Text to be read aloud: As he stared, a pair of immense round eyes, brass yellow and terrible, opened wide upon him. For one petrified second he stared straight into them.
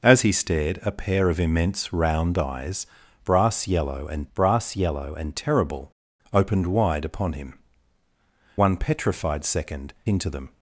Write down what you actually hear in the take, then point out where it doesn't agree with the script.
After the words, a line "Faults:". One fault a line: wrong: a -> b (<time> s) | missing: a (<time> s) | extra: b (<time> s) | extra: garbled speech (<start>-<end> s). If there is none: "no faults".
As he stared, a pair of immense round eyes, brass yellow and brass yellow and terrible, opened wide upon him. One petrified second into them.
Faults:
extra: brass yellow and (4.3 s)
missing: For (7.6 s)
missing: he stared straight (9.9 s)